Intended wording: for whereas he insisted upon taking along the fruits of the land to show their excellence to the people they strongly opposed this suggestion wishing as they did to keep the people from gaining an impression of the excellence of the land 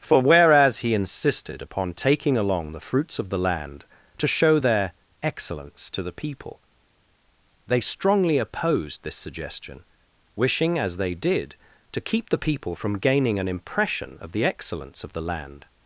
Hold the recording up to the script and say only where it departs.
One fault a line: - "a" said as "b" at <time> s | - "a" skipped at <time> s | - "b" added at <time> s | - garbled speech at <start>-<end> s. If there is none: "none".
none